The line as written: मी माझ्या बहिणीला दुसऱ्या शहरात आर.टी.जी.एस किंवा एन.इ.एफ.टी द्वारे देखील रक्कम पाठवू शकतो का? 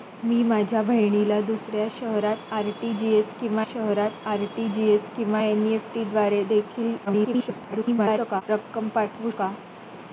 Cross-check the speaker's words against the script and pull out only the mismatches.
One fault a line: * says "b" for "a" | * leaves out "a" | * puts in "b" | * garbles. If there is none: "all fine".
* puts in "शहरात आर.टी.जी.एस किंवा"
* garbles
* leaves out "शकतो"